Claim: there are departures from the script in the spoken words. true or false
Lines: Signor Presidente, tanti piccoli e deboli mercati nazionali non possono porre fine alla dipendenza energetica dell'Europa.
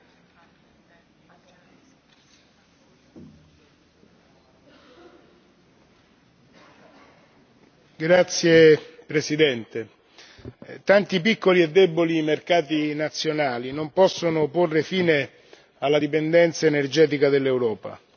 false